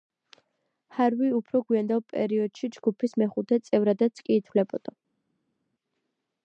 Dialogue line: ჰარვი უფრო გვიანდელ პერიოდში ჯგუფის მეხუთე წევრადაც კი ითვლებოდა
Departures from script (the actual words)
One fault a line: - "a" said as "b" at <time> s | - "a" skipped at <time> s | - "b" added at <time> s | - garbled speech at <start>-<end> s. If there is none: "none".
none